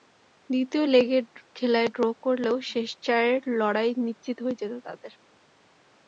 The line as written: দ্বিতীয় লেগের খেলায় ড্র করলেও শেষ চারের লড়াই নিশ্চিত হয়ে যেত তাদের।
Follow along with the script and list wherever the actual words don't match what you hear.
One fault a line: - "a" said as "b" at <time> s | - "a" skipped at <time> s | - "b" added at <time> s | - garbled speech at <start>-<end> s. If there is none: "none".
none